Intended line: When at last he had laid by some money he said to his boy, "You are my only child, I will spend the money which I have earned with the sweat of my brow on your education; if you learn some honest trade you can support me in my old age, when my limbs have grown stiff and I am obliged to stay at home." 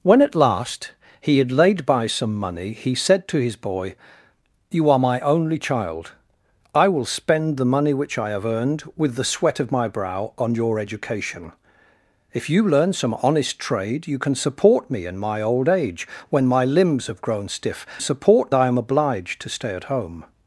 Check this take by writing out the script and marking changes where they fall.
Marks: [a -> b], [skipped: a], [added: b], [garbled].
When at last he had laid by some money he said to his boy, "You are my only child, I will spend the money which I have earned with the sweat of my brow on your education; if you learn some honest trade you can support me in my old age, when my limbs have grown stiff [and -> support] I am obliged to stay at home."